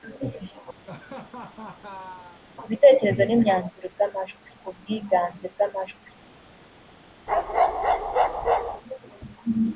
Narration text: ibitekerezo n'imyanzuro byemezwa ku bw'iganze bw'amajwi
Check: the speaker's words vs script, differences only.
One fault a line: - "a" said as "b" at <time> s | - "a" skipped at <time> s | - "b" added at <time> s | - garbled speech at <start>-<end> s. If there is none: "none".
- "byemezwa" said as "bw'amajwi" at 3.9 s